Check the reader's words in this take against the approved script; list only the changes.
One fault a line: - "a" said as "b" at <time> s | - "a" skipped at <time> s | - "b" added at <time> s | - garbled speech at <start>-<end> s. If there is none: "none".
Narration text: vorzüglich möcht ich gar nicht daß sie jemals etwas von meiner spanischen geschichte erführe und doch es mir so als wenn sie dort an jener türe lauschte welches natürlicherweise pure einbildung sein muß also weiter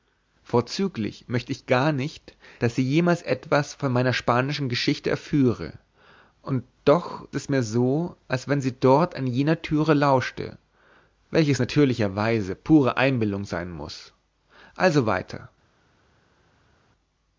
none